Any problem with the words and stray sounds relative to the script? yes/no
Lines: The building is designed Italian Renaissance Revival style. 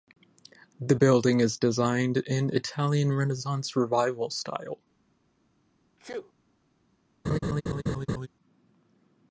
yes